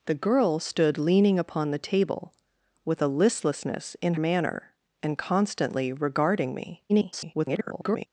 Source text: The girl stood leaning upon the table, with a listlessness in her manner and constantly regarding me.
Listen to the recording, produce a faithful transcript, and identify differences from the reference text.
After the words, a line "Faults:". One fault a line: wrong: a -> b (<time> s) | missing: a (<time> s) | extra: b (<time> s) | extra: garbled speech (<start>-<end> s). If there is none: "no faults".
The girl stood leaning upon the table, with a listlessness in manner and constantly regarding me. [garbled]
Faults:
missing: her (4.2 s)
extra: garbled speech (6.9-8.1 s)